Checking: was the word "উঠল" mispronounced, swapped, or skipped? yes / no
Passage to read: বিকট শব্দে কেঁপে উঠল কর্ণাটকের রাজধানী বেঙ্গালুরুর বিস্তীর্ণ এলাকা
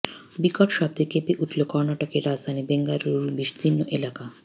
no